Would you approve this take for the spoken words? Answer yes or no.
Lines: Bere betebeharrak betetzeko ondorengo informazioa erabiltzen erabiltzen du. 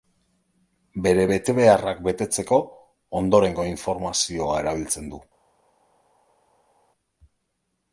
no